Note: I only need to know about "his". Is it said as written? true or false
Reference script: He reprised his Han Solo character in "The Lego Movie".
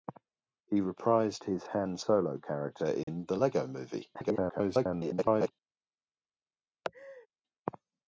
true